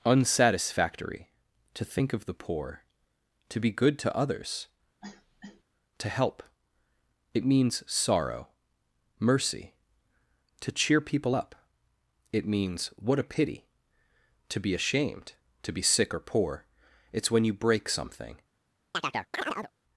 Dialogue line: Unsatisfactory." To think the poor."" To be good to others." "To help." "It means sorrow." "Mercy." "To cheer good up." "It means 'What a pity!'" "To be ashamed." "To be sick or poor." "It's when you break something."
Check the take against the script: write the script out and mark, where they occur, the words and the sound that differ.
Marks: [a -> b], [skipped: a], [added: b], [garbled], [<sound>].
Unsatisfactory." To think [added: of] the poor."" To be good to others." [cough] "To help." "It means sorrow." "Mercy." "To cheer [good -> people] up." "It means 'What a pity!'" "To be ashamed." "To be sick or poor." "It's when you break something." [chirp]